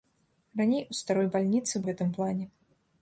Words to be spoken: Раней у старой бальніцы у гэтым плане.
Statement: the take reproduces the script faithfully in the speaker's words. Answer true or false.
true